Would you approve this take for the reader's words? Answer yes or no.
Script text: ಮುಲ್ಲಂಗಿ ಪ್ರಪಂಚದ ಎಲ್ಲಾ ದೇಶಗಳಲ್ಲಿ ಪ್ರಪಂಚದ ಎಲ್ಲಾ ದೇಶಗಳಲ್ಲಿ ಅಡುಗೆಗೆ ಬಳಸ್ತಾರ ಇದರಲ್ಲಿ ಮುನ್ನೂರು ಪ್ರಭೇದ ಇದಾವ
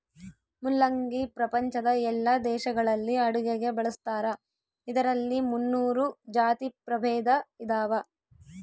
no